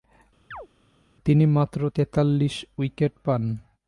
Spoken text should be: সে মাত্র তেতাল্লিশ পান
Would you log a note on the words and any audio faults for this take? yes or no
yes